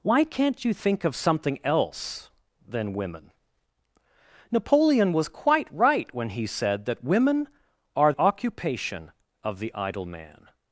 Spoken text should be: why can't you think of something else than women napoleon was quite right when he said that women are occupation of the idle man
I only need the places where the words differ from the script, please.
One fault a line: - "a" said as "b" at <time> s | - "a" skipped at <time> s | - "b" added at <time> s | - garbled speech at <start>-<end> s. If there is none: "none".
none